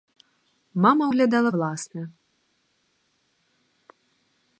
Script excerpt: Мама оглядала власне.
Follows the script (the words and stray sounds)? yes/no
yes